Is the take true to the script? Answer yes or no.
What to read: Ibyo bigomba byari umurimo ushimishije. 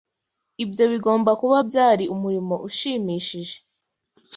no